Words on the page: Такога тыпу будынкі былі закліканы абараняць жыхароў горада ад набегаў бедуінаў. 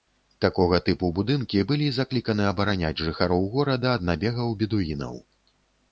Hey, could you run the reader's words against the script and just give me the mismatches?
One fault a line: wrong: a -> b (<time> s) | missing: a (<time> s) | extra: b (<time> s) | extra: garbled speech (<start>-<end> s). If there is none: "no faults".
no faults